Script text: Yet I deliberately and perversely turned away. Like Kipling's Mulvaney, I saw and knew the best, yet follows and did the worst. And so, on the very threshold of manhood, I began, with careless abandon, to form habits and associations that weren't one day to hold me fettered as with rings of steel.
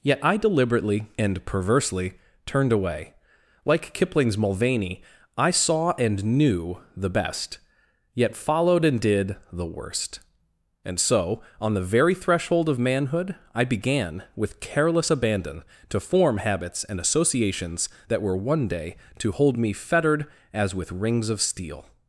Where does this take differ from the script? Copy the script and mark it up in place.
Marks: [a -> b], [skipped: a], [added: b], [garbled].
Yet I deliberately and perversely turned away. Like Kipling's Mulvaney, I saw and knew the best, yet [follows -> followed] and did the worst. And so, on the very threshold of manhood, I began, with careless abandon, to form habits and associations that [weren't -> were] one day to hold me fettered as with rings of steel.